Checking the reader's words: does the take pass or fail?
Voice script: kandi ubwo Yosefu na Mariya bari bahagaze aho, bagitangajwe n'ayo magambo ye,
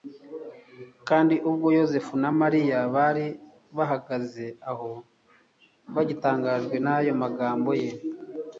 pass